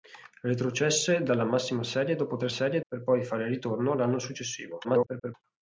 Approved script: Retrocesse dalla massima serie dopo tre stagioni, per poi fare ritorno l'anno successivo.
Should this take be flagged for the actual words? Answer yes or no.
yes